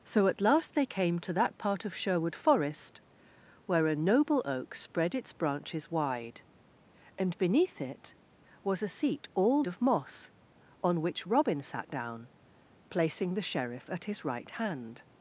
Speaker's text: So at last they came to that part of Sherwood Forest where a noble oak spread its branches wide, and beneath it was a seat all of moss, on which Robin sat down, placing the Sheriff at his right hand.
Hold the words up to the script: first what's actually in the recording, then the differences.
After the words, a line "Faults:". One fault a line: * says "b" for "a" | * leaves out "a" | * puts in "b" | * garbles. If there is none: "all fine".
So at last they came to that part of Sherwood Forest where a noble oak spread its branches wide, and beneath it was a seat all of moss, on which Robin sat down, placing the Sheriff at his right hand.
Faults:
all fine